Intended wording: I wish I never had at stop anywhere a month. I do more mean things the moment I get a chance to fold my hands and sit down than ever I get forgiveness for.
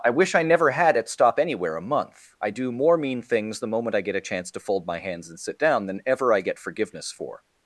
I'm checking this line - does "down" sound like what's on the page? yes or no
yes